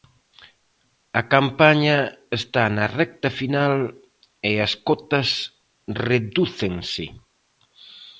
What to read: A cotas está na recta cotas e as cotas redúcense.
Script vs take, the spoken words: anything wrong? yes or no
yes